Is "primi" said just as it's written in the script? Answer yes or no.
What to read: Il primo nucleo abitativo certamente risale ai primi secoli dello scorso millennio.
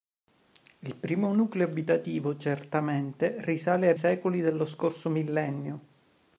no